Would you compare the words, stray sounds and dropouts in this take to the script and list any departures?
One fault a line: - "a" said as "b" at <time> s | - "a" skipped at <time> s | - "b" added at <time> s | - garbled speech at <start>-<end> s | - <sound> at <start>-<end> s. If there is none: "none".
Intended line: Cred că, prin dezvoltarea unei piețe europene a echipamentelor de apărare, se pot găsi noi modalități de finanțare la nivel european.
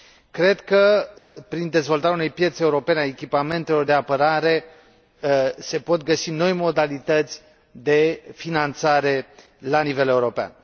none